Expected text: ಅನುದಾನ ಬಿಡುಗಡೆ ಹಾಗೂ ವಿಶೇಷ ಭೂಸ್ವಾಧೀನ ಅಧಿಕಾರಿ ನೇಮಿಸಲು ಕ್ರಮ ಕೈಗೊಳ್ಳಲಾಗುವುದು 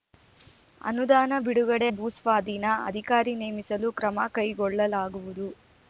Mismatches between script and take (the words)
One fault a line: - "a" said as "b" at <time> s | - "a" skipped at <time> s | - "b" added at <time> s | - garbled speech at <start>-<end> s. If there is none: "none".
- "ಹಾಗೂ ವಿಶೇಷ" skipped at 1.9 s